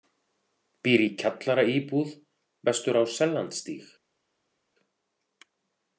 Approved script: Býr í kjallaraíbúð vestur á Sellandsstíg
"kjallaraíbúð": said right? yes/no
yes